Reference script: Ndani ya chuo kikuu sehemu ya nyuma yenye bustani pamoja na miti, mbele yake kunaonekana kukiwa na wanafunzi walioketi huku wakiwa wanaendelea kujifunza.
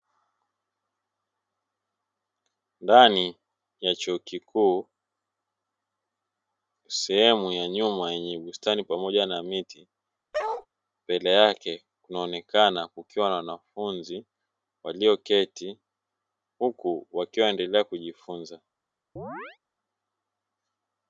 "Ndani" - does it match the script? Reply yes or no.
yes